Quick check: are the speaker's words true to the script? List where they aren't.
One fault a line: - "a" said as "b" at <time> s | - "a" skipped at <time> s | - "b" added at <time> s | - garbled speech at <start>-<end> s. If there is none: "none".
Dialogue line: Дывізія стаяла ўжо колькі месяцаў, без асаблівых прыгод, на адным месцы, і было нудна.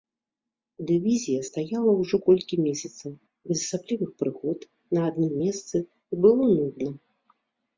none